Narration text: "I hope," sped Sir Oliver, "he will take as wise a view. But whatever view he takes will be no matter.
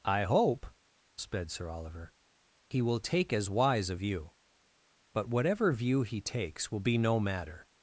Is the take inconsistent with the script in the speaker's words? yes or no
no